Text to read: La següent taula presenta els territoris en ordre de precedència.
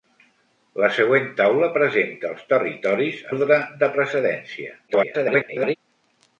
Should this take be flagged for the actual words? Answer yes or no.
yes